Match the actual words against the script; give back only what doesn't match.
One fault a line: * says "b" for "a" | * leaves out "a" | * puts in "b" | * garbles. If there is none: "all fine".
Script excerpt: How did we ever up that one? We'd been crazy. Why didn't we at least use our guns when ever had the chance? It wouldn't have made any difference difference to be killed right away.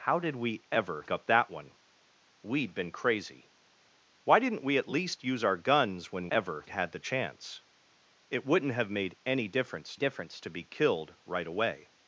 all fine